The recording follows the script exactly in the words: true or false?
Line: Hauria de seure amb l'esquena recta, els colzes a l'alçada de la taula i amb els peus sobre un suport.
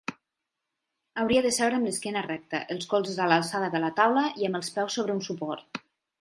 true